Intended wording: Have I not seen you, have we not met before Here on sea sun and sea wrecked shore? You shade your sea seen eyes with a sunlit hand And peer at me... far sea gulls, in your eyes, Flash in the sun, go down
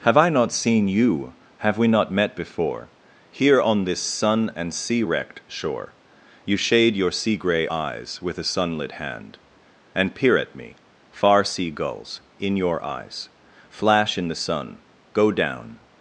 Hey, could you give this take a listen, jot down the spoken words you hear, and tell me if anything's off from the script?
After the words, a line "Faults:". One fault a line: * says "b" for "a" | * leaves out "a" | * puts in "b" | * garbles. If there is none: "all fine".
Have I not seen you, have we not met before Here on this sun and sea wrecked shore? You shade your sea gray eyes with a sunlit hand And peer at me... far sea gulls, in your eyes, Flash in the sun, go down
Faults:
* says "this" for "sea"
* says "gray" for "seen"